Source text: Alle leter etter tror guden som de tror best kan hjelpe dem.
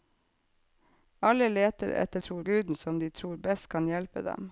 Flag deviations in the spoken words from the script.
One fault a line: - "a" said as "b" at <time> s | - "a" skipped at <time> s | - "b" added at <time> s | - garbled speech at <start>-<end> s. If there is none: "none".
none